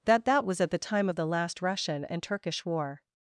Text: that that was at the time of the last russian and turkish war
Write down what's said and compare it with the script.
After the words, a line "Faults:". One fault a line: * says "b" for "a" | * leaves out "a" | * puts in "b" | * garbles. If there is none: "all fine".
that that was at the time of the last russian and turkish war
Faults:
all fine